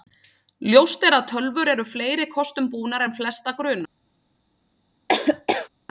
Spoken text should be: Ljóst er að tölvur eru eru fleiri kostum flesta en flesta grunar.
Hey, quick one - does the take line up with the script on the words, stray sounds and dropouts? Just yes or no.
no